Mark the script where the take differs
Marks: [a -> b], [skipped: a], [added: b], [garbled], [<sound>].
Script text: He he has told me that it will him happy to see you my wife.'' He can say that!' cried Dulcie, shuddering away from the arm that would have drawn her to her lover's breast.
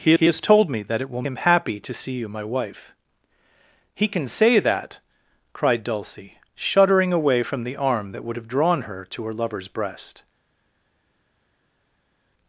He he has told me that it will him happy to see you my wife.'' He can say that!' cried Dulcie, shuddering away from the arm that would have drawn her to her lover's breast.